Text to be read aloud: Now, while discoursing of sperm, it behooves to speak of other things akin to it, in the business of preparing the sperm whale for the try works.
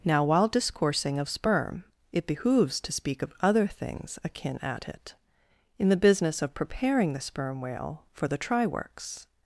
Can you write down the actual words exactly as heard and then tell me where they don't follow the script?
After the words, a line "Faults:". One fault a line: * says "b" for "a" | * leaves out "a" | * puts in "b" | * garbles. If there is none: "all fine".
Now, while discoursing of sperm, it behooves to speak of other things akin at it, in the business of preparing the sperm whale for the try works.
Faults:
* says "at" for "to"